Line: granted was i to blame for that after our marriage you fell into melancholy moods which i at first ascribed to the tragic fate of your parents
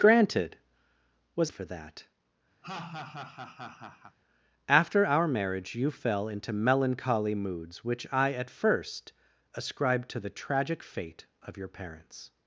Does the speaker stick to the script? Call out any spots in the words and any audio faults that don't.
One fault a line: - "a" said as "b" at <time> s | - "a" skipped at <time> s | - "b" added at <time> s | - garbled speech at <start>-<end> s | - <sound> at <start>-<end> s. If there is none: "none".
- "i to blame" skipped at 1.5 s
- laugh at 2.6-4.2 s